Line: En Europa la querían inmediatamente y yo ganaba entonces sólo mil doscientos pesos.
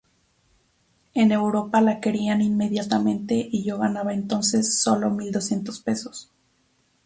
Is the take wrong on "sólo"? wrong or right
right